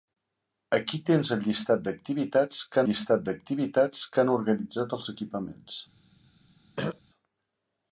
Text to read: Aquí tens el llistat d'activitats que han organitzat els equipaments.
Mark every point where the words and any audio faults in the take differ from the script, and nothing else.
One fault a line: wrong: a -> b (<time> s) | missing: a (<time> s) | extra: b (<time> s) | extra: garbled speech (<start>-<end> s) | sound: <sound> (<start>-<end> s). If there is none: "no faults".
extra: llistat d'activitats que (2.9 s)
sound: throat clearing (6.8-7.0 s)